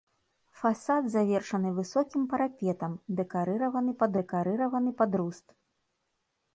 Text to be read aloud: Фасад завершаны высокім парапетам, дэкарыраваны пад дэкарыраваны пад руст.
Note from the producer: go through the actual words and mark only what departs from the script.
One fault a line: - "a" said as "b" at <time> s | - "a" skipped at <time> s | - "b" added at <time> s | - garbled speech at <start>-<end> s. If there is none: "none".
none